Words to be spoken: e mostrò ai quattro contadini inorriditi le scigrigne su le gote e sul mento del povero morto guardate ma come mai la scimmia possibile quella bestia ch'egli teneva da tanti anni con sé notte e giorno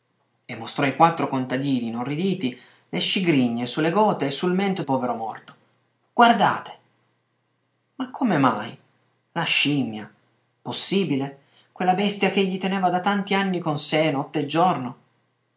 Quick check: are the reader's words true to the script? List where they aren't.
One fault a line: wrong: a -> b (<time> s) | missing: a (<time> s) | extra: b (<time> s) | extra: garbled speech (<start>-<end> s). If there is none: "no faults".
missing: del (4.8 s)